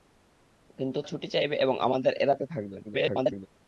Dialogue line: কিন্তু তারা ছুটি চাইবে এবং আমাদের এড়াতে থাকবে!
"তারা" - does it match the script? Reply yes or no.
no